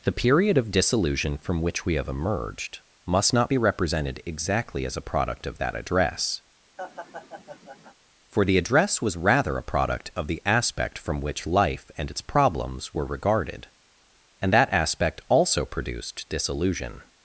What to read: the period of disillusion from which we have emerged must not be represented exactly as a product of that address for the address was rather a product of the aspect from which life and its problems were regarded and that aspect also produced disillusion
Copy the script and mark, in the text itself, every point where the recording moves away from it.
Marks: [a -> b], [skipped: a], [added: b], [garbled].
the period of disillusion from which we have emerged must not be represented exactly as a product of that address for the address was rather a product of the aspect from which life and its problems were regarded and that aspect also produced disillusion